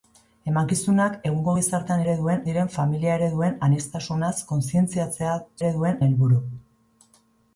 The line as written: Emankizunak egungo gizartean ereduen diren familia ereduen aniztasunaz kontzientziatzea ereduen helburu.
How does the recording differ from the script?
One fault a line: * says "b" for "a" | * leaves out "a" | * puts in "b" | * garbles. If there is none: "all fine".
all fine